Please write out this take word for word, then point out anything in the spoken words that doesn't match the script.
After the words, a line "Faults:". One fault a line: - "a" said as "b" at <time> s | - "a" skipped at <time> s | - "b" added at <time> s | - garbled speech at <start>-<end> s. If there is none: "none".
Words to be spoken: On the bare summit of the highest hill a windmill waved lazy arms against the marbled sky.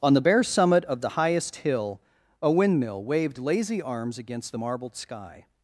On the bare summit of the highest hill a windmill waved lazy arms against the marbled sky.
Faults:
none